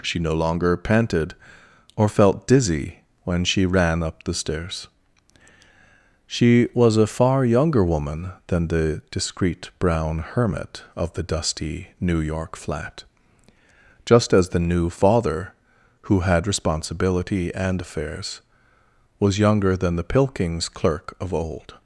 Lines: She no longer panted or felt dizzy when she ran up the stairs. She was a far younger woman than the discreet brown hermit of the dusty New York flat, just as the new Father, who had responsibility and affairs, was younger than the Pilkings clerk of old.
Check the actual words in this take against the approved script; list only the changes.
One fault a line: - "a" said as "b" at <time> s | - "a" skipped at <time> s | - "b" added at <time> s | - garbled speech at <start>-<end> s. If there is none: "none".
none